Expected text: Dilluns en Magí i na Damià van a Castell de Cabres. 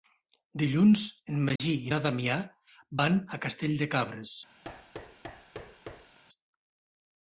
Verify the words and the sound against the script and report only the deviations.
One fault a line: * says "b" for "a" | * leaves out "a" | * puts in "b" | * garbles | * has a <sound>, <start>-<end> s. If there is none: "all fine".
* has a dropout, 1.6-1.6 s
* has a thud, 4.6-6.2 s